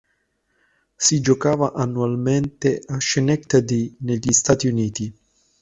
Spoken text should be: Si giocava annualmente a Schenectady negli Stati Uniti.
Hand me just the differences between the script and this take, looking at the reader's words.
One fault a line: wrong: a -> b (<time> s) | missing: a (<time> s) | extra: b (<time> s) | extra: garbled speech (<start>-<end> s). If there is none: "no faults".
no faults